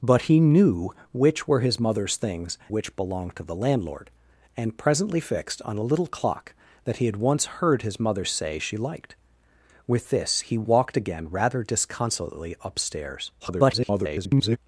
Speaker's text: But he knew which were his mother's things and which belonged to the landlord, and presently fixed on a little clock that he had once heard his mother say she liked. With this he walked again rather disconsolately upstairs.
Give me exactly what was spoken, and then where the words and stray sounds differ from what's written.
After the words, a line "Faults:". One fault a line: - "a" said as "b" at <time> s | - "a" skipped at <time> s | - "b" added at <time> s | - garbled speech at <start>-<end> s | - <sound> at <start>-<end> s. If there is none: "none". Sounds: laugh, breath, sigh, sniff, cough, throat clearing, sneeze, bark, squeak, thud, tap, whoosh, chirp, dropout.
But he knew which were his mother's things which belonged to the landlord, and presently fixed on a little clock that he had once heard his mother say she liked. With this he walked again rather disconsolately upstairs. [garbled]
Faults:
- "and" skipped at 2.6 s
- garbled speech at 13.4-14.6 s